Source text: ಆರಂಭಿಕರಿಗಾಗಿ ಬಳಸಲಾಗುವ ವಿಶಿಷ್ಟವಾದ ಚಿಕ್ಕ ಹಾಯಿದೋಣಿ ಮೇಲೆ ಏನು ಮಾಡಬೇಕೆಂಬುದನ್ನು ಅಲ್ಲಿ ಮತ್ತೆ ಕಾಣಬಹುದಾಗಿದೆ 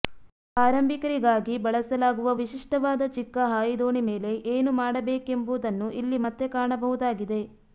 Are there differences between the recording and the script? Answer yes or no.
yes